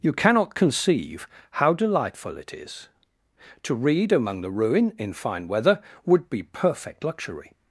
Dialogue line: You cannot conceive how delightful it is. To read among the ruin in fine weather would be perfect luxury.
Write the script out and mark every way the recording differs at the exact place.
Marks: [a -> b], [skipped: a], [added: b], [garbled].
You cannot conceive how delightful it is. To read among the ruin in fine weather would be perfect luxury.